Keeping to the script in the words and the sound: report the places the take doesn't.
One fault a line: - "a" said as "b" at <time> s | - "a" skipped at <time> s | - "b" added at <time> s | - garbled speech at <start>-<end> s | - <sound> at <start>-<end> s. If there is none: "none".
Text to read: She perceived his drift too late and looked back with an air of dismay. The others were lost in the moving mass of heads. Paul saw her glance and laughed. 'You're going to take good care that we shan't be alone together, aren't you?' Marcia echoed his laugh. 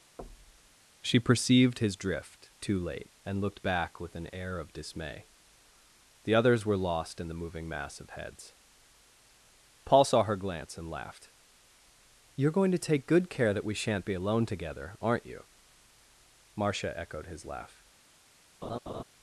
- thud at 0.2-0.8 s
- laugh at 18.6-19.0 s